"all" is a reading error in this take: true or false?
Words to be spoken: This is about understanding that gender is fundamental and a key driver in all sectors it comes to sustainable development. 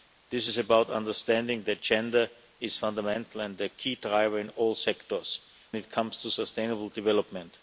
false